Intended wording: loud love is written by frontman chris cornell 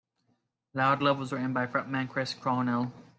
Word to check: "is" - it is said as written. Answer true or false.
false